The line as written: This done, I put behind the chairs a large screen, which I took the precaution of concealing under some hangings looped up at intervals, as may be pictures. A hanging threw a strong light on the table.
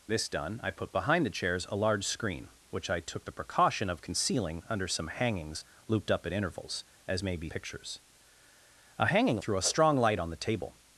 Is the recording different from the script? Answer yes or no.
no